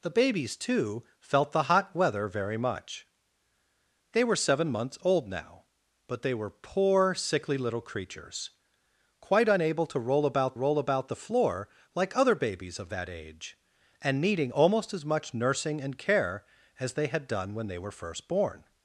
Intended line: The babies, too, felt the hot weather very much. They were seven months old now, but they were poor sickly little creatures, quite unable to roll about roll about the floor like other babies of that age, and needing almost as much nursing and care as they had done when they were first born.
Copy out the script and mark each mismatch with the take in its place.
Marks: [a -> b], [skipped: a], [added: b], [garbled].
The babies, too, felt the hot weather very much. They were seven months old now, but they were poor sickly little creatures, quite unable to roll about roll about the floor like other babies of that age, and needing almost as much nursing and care as they had done when they were first born.